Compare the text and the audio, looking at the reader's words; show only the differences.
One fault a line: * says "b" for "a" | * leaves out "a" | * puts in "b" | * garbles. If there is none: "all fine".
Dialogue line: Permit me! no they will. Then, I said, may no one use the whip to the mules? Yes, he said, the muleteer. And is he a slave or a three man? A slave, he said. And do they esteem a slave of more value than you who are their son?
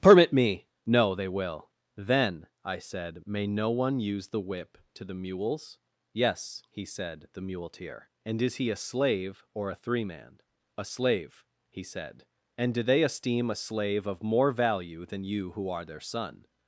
all fine